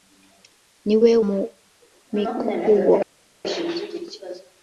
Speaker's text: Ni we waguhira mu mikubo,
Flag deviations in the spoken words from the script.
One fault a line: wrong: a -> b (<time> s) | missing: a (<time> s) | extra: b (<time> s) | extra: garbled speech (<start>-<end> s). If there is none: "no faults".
missing: waguhira (1.1 s)